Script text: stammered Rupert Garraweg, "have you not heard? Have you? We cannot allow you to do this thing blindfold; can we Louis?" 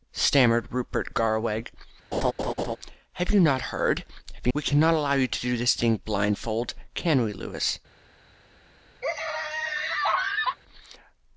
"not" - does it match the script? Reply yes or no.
yes